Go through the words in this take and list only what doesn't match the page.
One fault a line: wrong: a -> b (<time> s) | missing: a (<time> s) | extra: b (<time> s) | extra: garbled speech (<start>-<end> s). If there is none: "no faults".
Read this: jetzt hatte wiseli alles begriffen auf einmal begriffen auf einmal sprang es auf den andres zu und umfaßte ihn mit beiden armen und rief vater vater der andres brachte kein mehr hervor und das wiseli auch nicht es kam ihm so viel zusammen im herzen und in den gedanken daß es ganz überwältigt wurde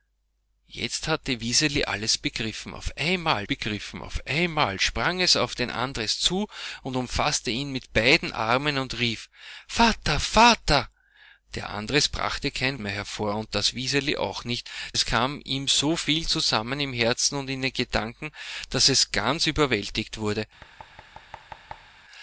no faults